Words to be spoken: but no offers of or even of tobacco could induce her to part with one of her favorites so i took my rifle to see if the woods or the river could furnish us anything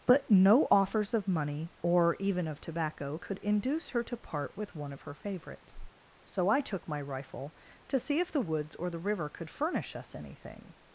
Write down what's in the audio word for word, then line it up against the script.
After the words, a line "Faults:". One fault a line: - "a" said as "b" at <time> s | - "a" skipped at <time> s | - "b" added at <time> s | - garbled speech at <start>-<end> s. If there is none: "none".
but no offers of money or even of tobacco could induce her to part with one of her favorites so i took my rifle to see if the woods or the river could furnish us anything
Faults:
- "money" added at 1.3 s